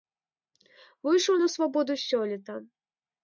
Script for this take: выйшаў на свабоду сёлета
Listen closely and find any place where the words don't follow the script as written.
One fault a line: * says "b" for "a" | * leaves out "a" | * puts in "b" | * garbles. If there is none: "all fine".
all fine